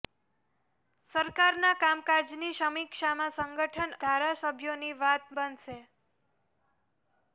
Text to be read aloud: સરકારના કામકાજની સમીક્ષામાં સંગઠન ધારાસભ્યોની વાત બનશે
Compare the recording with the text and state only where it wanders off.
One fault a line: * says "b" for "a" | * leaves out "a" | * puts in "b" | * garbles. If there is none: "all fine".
all fine